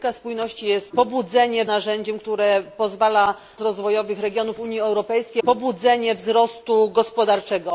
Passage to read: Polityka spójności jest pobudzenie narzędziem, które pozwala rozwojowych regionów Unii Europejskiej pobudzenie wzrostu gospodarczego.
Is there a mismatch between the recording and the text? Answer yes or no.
no